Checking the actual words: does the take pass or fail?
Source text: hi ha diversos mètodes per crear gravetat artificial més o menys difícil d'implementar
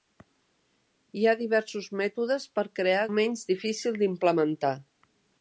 fail